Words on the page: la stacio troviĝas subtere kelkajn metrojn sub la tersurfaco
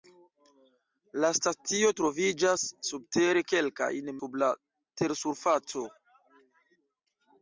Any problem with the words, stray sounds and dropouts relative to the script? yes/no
yes